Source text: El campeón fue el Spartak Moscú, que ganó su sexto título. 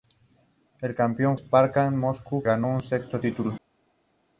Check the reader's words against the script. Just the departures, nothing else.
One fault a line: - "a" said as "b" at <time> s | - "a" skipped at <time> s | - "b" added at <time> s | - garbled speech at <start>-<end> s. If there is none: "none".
- "fue el" skipped at 1.4 s
- "que" skipped at 2.4 s